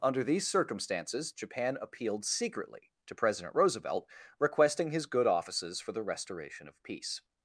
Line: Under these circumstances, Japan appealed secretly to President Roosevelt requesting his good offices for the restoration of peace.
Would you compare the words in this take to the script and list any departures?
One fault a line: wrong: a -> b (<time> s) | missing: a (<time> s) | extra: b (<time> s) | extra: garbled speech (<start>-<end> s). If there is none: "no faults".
no faults